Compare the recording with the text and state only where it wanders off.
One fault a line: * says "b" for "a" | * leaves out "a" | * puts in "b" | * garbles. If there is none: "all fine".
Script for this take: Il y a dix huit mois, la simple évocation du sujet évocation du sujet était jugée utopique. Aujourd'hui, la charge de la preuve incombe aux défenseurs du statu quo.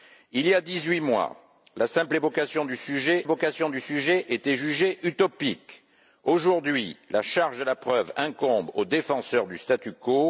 all fine